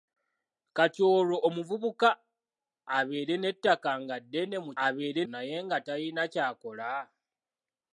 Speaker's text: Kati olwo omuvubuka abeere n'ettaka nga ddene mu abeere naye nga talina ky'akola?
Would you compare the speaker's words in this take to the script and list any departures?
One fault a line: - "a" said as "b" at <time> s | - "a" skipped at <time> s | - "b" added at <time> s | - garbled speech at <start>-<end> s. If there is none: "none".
none